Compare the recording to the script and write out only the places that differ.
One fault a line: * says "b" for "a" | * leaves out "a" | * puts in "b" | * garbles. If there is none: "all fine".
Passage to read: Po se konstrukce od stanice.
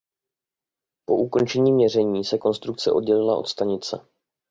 * puts in "ukončení měření"
* puts in "oddělila"